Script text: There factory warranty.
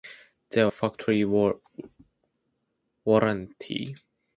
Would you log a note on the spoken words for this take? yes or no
no